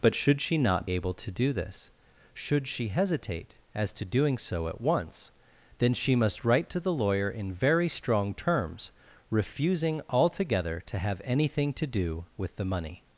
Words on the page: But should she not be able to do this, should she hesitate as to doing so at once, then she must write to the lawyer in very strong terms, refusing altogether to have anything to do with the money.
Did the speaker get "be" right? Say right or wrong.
wrong